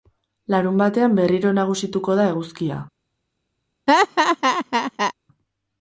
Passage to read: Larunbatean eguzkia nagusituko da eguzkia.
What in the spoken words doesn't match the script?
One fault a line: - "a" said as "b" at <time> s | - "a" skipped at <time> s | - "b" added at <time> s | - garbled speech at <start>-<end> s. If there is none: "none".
- "eguzkia" said as "berriro" at 1.2 s